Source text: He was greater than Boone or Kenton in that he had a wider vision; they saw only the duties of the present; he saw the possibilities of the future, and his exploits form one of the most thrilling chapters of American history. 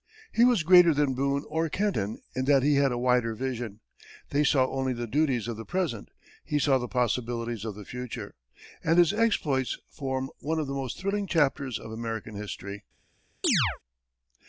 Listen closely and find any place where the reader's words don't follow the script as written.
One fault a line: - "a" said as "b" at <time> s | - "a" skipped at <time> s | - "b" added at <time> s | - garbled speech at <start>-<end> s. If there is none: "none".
none